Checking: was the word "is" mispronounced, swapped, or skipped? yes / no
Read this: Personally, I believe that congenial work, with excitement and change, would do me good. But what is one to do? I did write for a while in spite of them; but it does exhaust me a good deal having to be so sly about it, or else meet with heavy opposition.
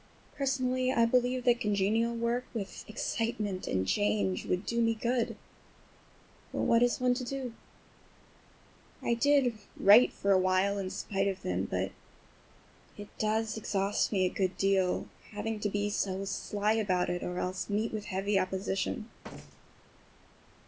no